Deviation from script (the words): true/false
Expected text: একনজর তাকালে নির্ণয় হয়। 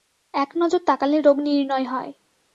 true